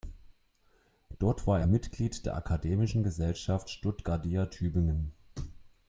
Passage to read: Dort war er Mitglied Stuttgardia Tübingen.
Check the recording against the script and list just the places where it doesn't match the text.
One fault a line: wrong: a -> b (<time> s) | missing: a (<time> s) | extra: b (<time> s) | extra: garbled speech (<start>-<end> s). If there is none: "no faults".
extra: der Akademischen Gesellschaft (2.3 s)